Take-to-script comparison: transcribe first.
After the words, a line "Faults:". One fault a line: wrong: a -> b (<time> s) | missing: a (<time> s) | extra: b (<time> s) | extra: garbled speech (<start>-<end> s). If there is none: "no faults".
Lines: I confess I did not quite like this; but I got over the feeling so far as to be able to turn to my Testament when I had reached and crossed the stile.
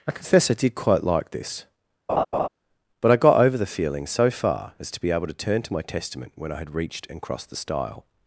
I confess I did quite like this; but I got over the feeling so far as to be able to turn to my Testament when I had reached and crossed the stile.
Faults:
missing: not (0.8 s)